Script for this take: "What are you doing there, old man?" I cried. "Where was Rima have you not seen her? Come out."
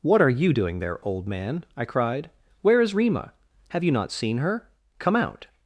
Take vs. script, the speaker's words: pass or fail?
fail